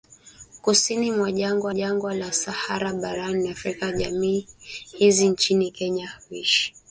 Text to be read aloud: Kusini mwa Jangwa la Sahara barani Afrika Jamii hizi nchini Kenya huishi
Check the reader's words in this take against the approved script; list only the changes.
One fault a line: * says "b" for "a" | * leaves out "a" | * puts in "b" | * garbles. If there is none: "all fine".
* puts in "Jangwa"